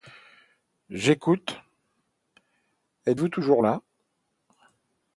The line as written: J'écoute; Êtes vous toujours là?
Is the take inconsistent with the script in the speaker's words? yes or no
no